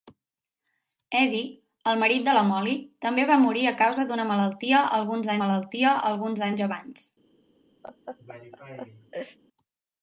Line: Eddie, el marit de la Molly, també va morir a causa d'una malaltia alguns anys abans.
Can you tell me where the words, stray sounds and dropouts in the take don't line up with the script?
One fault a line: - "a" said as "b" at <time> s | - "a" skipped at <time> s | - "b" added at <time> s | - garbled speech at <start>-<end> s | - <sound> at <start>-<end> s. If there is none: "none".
- "malaltia alguns" added at 5.5 s
- laugh at 7.8-9.4 s